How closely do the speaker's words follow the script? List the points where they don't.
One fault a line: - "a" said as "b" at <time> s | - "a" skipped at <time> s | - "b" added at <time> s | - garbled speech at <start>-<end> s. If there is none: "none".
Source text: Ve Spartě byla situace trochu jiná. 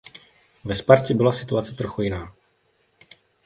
none